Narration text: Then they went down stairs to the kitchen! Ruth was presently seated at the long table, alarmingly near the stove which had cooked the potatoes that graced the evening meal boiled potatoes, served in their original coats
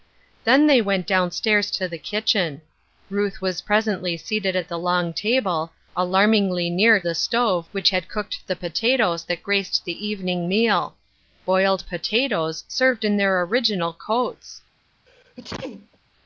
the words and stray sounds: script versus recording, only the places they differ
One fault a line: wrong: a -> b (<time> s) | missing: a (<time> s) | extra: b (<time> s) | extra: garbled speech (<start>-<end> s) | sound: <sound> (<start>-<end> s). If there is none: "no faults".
sound: sneeze (15.1-16.0 s)